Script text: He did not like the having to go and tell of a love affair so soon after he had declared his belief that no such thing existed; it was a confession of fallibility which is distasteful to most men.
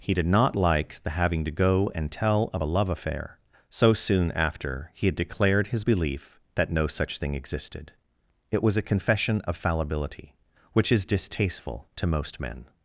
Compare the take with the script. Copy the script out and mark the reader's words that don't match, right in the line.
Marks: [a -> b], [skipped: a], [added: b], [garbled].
He did not like the having to go and tell of a love affair so soon after he had declared his belief that no such thing existed; it was a confession of fallibility which is distasteful to most men.